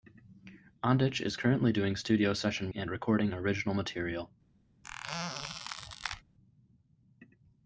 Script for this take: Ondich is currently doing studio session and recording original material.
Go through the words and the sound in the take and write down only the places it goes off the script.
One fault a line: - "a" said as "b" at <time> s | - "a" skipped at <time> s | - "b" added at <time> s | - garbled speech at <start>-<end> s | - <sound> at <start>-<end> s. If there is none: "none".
- squeak at 4.8-6.2 s